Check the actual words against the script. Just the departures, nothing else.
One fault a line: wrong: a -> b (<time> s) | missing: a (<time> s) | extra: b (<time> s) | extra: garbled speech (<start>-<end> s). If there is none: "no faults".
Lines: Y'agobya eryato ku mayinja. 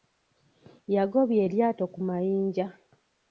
no faults